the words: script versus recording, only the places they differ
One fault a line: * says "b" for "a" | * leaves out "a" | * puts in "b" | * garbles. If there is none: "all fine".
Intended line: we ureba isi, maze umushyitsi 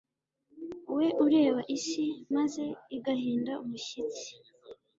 * puts in "igahinda"